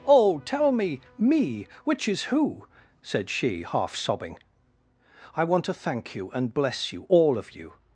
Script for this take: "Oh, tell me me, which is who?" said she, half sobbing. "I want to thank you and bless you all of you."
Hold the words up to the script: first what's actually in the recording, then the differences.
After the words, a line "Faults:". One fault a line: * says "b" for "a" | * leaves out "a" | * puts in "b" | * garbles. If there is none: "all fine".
"Oh, tell me me, which is who?" said she, half sobbing. "I want to thank you and bless you all of you."
Faults:
all fine